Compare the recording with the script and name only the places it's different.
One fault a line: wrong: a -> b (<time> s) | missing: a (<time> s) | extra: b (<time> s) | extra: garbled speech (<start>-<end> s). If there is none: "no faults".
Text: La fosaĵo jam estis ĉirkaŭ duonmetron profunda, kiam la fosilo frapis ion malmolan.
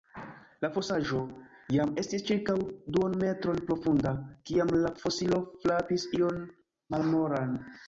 no faults